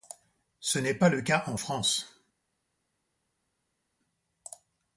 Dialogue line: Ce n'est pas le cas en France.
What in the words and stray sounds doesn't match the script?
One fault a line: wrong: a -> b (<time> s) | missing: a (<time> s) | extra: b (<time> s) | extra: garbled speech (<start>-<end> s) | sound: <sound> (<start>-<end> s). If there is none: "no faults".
no faults